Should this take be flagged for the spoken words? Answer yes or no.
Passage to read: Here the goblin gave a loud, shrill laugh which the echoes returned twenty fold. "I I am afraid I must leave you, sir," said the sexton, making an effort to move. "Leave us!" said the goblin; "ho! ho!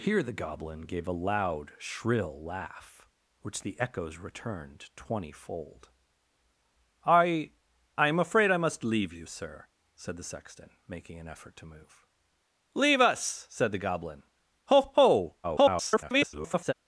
yes